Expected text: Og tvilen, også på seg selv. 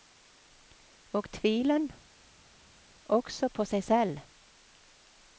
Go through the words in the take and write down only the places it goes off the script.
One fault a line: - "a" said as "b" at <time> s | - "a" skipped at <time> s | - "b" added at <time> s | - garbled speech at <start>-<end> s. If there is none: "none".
none